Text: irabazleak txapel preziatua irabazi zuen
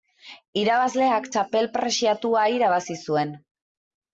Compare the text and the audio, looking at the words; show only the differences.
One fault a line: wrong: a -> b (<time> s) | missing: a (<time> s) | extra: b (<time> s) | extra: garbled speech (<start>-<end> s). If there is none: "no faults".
no faults